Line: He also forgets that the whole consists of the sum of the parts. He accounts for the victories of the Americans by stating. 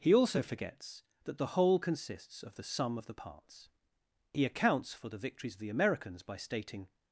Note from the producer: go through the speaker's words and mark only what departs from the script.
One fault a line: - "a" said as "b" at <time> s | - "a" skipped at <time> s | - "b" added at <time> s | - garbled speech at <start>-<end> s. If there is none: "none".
none